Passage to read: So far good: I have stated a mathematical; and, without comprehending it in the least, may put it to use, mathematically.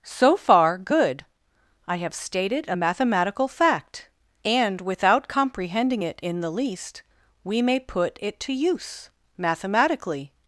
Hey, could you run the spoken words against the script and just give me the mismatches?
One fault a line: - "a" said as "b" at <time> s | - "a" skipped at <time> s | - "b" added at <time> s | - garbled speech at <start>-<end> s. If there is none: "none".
- "fact" added at 3.5 s
- "we" added at 7.4 s